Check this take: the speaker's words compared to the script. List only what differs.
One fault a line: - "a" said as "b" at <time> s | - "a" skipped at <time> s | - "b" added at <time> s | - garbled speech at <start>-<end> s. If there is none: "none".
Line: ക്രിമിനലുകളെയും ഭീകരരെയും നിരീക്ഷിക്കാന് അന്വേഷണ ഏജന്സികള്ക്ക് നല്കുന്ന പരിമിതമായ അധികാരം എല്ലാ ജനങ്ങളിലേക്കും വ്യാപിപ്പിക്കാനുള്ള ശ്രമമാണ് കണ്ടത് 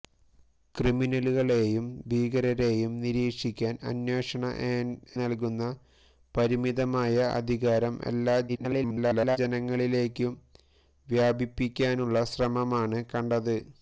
- "ഏജന്സികള്ക്ക്" skipped at 4.4 s
- garbled speech at 8.5-9.4 s